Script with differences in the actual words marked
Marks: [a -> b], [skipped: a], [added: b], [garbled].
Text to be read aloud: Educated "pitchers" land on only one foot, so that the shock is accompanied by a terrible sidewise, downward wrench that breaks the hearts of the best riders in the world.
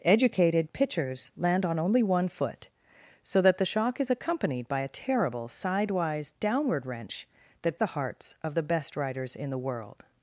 Educated "pitchers" land on only one foot, so that the shock is accompanied by a terrible sidewise, downward wrench that [skipped: breaks] the hearts of the best riders in the world.